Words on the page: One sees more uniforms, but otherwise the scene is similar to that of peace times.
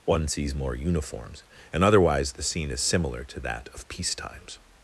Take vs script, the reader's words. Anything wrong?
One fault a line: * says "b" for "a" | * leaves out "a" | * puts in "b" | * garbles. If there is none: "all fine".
* says "and" for "but"